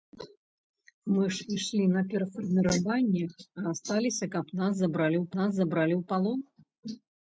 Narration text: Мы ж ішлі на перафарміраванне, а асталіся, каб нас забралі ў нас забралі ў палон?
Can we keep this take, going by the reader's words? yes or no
yes